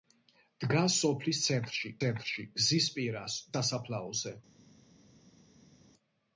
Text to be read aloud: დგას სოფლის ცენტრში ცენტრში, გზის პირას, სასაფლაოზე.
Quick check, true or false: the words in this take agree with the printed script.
true